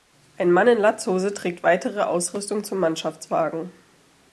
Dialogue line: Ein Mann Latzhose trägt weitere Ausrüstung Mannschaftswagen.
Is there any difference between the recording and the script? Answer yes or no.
yes